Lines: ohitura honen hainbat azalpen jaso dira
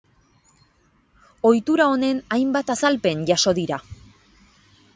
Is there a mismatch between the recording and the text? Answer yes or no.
no